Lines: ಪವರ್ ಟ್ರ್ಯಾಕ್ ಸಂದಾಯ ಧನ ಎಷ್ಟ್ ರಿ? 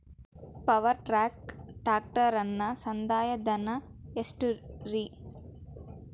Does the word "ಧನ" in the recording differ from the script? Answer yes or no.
no